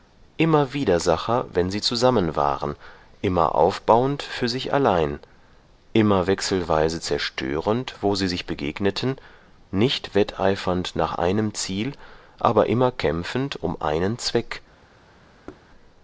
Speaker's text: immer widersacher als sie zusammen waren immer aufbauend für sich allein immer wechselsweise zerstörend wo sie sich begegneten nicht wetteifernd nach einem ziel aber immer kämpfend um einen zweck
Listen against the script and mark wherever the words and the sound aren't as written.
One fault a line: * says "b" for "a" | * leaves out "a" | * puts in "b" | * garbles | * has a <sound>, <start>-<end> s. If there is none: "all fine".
* says "wenn" for "als"
* has a thud, 15.5-15.7 s